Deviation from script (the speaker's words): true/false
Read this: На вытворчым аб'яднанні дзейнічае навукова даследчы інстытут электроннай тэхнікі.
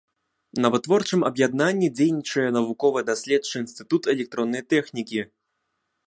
false